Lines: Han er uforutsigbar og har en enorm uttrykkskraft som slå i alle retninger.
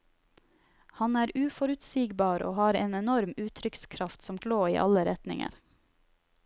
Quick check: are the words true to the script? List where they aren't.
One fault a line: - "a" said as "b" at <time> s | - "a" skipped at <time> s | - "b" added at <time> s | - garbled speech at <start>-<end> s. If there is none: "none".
none